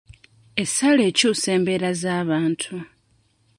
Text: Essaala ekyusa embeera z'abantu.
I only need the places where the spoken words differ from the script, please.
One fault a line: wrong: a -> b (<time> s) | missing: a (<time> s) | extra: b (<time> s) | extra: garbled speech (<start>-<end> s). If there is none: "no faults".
no faults